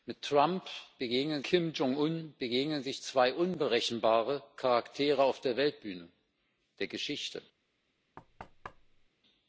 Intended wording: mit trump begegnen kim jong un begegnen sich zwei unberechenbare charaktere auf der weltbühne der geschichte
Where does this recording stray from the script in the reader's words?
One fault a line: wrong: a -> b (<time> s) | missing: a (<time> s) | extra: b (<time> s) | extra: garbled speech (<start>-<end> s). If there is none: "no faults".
no faults